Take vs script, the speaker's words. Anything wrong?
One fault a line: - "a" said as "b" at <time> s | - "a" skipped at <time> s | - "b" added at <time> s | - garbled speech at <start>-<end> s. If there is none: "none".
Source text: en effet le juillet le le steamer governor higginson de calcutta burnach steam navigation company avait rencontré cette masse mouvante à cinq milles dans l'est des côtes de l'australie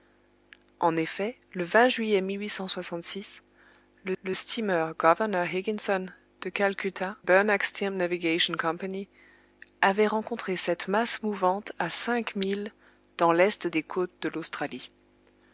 none